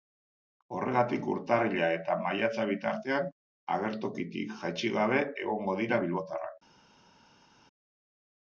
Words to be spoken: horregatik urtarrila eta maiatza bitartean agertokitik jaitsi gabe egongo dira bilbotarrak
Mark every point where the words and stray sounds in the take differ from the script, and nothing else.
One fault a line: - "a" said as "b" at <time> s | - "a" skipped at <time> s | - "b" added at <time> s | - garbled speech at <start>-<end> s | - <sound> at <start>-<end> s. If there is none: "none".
none